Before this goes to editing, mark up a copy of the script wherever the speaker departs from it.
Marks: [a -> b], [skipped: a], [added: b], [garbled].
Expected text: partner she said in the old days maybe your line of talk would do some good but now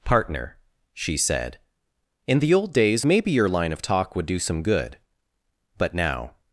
partner she said in the old days maybe your line of talk would do some good but now